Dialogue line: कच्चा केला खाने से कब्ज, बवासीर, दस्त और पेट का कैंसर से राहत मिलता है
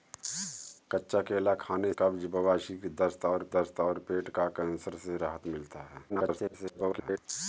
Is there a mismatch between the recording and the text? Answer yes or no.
yes